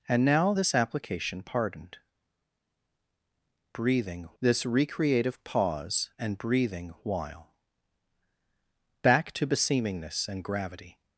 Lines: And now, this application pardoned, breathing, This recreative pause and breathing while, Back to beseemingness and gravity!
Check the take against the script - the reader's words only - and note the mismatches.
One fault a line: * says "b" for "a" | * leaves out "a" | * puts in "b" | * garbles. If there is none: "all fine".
all fine